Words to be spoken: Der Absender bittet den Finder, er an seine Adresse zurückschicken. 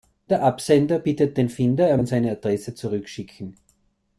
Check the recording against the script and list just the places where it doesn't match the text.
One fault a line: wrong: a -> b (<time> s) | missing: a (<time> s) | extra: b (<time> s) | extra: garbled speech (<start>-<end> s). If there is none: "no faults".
no faults